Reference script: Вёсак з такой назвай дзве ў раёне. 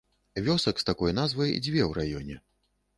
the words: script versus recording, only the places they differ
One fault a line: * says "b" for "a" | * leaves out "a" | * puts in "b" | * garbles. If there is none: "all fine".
all fine